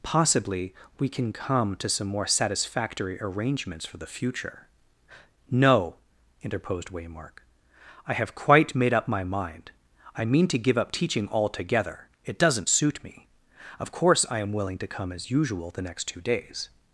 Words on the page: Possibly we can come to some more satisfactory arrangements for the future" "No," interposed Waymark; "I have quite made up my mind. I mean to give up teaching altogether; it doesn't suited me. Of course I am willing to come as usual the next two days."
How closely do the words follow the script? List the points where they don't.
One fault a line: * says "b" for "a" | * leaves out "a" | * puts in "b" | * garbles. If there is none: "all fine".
* says "suit" for "suited"